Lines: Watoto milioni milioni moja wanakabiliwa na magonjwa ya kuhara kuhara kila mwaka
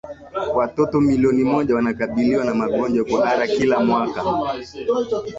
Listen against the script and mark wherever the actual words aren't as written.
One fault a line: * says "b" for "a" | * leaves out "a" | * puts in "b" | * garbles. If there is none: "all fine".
* leaves out "milioni"
* leaves out "kuhara"